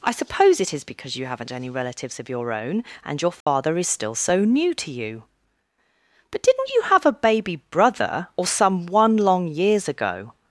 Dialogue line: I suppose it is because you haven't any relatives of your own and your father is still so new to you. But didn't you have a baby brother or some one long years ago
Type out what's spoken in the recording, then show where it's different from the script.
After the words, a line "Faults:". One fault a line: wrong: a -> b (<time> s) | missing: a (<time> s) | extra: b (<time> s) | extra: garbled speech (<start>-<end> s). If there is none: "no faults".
I suppose it is because you haven't any relatives of your own and your father is still so new to you. But didn't you have a baby brother or some one long years ago
Faults:
no faults